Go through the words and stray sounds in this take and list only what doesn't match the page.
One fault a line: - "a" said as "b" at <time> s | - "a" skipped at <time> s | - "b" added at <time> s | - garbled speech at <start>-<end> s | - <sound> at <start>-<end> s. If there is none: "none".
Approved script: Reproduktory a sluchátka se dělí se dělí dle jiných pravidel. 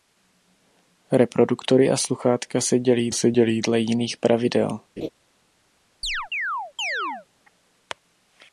- laugh at 5.0-5.1 s
- chirp at 6.0-7.3 s